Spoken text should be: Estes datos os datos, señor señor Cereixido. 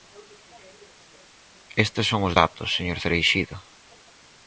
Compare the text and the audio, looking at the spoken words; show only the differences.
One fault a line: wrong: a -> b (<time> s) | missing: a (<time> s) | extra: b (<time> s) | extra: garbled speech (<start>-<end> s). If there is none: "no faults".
wrong: datos -> son (2.1 s)
missing: señor (3.0 s)